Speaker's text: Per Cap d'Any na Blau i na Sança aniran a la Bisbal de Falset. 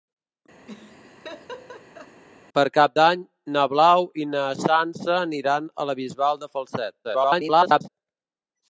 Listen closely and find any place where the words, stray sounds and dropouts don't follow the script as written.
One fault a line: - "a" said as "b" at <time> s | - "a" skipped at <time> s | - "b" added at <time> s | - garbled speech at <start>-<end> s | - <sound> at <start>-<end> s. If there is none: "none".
- laugh at 0.7-2.2 s
- garbled speech at 7.0-7.9 s